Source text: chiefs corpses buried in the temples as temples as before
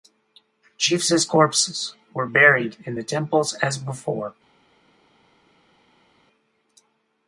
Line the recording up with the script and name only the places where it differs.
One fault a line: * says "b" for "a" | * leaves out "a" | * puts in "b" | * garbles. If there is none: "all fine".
* puts in "were"
* leaves out "temples as"